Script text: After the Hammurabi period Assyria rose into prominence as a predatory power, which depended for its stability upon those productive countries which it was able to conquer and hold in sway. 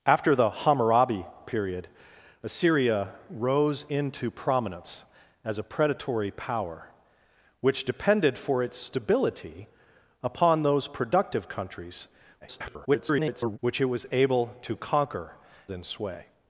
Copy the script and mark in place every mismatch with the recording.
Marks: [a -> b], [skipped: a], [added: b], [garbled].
After the Hammurabi period Assyria rose into prominence as a predatory power, which depended for its stability upon those productive countries [garbled] which it was able to conquer [skipped: and hold] in sway.